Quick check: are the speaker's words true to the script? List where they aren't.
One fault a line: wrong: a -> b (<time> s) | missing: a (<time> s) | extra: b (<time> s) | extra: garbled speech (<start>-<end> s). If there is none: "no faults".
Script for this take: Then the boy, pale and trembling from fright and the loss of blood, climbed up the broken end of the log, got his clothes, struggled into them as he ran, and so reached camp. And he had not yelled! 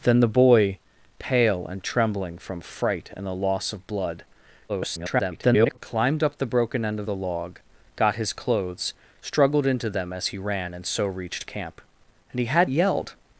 extra: garbled speech (4.7-5.8 s)
missing: not (12.7 s)